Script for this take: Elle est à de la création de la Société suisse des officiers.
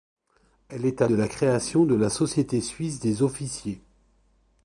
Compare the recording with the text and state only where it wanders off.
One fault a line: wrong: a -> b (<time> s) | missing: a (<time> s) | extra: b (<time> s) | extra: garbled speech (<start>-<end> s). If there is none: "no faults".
no faults